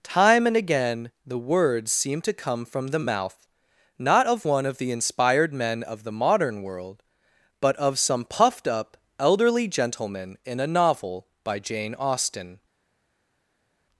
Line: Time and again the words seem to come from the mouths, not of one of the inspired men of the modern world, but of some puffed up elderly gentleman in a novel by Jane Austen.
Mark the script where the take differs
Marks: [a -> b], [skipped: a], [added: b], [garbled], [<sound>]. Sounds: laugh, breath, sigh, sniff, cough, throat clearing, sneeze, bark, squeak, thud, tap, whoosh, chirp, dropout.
Time and again the words seem to come from the [mouths, -> mouth] not of one of the inspired men of the modern world, but of some puffed up elderly gentleman in a novel by Jane Austen.